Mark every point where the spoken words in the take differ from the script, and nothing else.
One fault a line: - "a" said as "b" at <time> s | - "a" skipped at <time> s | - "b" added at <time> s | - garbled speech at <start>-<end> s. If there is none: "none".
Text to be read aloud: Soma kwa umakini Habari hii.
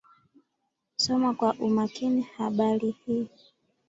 none